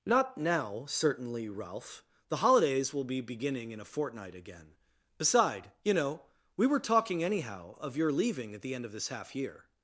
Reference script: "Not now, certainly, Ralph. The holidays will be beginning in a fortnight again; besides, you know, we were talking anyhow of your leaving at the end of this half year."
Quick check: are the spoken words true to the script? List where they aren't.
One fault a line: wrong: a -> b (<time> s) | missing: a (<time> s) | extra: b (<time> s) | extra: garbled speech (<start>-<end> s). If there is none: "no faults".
wrong: besides -> beside (5.2 s)